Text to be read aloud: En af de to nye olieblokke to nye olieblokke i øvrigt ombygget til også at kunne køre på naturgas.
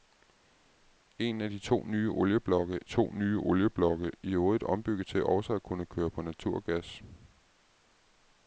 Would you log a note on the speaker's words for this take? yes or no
no